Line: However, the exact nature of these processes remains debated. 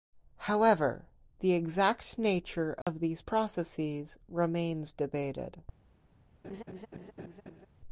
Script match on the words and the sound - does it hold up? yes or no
no